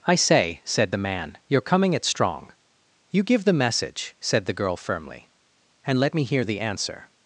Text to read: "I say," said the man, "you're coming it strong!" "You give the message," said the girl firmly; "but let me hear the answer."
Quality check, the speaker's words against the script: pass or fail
fail